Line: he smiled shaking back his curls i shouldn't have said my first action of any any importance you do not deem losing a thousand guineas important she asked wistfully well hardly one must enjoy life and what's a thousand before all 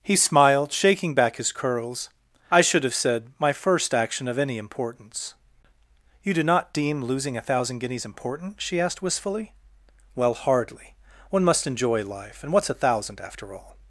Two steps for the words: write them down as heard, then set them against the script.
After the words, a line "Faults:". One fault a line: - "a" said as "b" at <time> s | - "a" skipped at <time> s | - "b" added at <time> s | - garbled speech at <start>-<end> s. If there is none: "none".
he smiled shaking back his curls i should have said my first action of any importance you do not deem losing a thousand guineas important she asked wistfully well hardly one must enjoy life and what's a thousand after all
Faults:
- "shouldn't" said as "should" at 2.6 s
- "any" skipped at 4.6 s
- "before" said as "after" at 13.2 s